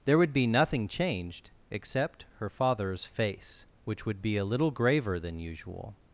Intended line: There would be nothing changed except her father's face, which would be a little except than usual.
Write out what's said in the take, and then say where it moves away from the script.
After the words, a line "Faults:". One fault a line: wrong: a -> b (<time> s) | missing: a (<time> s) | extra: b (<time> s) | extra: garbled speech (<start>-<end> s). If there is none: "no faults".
There would be nothing changed except her father's face, which would be a little graver than usual.
Faults:
wrong: except -> graver (4.7 s)